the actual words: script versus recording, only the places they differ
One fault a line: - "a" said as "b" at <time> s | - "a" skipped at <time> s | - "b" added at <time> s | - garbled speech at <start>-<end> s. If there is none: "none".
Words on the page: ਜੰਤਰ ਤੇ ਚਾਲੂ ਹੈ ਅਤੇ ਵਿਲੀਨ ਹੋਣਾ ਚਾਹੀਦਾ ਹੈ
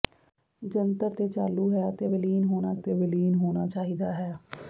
- "ਅਤੇ ਵਿਲੀਨ ਹੋਣਾ" added at 2.7 s